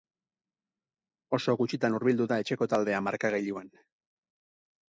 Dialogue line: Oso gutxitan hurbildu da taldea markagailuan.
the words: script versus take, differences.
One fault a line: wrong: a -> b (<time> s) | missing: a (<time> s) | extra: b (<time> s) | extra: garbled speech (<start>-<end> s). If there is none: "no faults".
extra: etxeko (2.5 s)